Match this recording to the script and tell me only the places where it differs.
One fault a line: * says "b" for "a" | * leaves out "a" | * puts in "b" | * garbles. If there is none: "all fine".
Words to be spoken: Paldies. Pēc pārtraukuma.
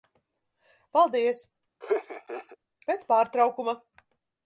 all fine